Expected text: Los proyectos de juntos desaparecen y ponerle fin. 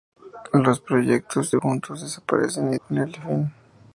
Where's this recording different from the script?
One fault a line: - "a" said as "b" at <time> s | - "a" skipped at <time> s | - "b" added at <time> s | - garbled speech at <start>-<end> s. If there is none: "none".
none